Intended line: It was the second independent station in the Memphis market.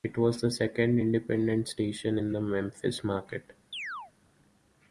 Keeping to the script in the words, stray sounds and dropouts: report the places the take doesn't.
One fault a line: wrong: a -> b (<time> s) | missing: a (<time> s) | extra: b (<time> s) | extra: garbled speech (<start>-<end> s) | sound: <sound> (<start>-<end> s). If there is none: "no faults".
sound: chirp (3.7-4.1 s)